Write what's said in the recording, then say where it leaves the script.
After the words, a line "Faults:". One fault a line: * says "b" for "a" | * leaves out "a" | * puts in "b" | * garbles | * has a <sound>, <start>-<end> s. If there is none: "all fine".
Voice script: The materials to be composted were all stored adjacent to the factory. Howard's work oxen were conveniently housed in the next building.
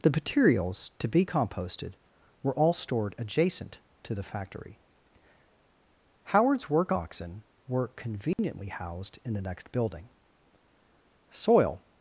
The materials to be composted were all stored adjacent to the factory. Howard's work oxen were conveniently housed in the next building. Soil
Faults:
* has a dropout, 8.3-8.4 s
* puts in "Soil"